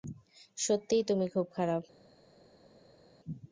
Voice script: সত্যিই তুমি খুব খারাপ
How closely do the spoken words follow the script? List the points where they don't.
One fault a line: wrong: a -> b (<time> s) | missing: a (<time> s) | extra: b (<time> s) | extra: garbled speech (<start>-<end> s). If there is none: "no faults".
no faults